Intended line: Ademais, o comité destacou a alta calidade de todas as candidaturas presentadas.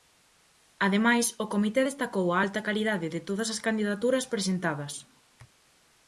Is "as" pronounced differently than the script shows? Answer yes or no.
no